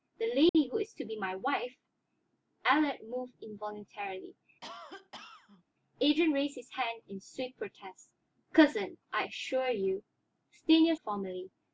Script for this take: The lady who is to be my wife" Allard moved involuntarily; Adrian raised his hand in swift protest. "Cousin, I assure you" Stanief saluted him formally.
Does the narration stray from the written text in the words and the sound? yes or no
yes